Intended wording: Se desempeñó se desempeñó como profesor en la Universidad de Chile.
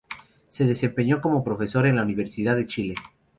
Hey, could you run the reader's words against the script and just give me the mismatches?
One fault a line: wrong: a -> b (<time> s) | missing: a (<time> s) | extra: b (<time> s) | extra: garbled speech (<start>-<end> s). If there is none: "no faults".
missing: se desempeñó (1.2 s)